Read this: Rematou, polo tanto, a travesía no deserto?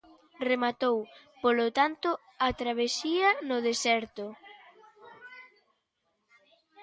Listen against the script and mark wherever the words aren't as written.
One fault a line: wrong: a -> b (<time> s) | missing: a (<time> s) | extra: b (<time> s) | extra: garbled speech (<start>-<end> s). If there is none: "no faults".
no faults